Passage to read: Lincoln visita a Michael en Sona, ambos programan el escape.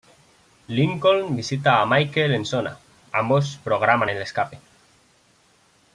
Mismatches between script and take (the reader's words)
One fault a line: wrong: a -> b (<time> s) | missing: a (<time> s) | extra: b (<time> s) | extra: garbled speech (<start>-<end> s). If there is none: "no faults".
no faults